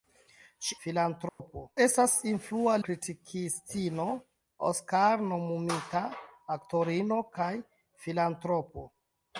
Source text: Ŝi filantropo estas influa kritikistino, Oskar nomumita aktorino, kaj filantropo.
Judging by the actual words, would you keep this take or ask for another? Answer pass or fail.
pass